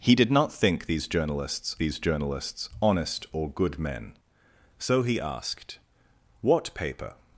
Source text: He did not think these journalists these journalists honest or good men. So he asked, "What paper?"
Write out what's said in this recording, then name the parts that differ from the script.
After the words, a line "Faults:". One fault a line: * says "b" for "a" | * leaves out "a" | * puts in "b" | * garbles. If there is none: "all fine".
He did not think these journalists these journalists honest or good men. So he asked, "What paper?"
Faults:
all fine